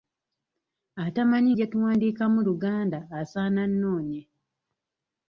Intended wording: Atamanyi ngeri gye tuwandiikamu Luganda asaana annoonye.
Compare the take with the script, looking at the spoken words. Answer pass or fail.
fail